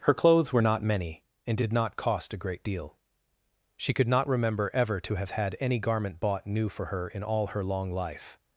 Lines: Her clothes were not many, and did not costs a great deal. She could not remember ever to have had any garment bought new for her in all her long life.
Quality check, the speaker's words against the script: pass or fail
fail